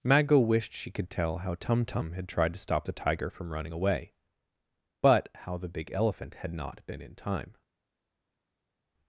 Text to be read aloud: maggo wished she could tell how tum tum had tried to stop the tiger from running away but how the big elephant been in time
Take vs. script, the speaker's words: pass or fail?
fail